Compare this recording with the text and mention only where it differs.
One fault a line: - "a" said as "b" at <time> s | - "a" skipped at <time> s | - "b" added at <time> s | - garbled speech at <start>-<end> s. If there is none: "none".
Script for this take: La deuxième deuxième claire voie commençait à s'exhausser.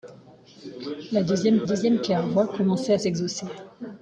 none